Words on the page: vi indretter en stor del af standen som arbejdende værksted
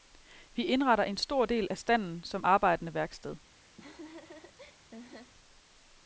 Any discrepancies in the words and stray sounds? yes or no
yes